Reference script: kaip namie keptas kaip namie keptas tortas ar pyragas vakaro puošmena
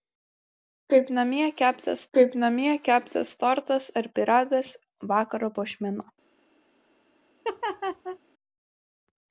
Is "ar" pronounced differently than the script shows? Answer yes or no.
no